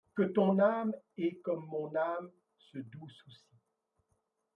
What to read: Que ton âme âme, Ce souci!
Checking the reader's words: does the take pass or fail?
fail